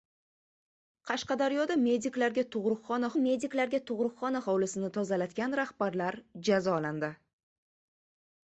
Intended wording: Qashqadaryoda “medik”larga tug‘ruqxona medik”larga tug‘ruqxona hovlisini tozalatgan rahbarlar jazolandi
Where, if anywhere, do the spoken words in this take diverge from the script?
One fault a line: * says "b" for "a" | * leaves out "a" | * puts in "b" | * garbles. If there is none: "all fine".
all fine